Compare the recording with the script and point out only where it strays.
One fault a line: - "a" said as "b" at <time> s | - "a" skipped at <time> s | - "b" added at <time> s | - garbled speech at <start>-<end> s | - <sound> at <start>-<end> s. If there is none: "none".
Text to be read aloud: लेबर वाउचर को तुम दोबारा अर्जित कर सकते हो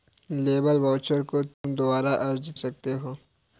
- dropout at 1.5-1.6 s
- "कर" skipped at 2.6 s